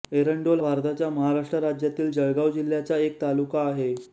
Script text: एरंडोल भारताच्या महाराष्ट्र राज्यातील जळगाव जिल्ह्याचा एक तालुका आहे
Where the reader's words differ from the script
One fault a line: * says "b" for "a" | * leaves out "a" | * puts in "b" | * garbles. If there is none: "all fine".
all fine